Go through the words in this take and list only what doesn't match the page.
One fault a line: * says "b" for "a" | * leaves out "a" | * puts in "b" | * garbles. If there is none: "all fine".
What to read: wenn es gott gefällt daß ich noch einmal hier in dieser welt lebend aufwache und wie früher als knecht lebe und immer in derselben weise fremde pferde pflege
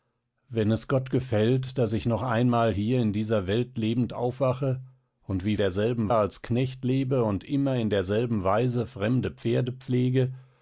* says "derselben" for "früher"